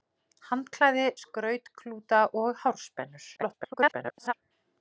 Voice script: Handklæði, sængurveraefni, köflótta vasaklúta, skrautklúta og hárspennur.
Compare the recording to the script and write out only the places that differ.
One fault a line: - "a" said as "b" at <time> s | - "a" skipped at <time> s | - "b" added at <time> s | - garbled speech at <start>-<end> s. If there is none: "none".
- "sængurveraefni köflótta vasaklúta" skipped at 1.0 s
- garbled speech at 3.4-4.3 s